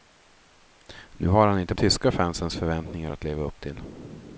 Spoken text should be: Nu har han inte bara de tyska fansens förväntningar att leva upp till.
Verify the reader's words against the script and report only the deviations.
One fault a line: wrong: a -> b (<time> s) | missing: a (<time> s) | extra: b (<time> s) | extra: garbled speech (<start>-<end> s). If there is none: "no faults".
missing: bara de (1.8 s)